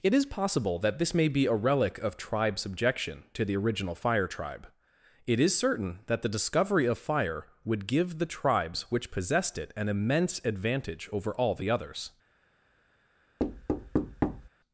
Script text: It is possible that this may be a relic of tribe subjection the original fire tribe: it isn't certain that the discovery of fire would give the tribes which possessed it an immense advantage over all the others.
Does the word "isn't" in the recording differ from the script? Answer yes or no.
yes